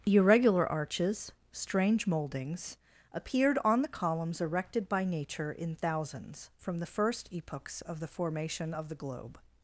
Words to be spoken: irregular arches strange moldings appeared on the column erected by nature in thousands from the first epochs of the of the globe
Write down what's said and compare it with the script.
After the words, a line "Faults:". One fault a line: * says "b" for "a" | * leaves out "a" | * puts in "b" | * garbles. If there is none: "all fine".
irregular arches strange moldings appeared on the columns erected by nature in thousands from the first epochs of the formation of the globe
Faults:
* says "columns" for "column"
* puts in "formation"